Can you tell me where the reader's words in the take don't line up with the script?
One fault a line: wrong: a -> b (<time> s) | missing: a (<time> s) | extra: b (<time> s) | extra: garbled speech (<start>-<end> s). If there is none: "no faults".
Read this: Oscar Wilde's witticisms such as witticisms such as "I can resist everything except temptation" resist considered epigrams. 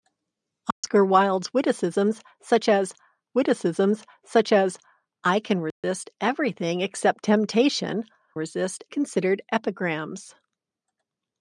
no faults